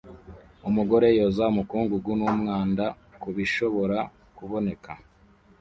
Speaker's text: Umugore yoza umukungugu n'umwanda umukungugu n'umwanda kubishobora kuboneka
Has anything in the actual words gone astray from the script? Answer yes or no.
yes